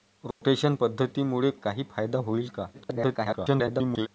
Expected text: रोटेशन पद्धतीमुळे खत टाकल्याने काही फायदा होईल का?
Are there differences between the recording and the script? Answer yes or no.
yes